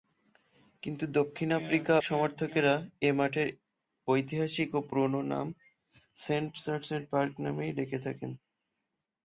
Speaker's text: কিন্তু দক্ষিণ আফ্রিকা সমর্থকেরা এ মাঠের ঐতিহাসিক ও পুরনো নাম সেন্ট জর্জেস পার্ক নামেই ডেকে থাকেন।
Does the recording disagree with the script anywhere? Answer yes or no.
no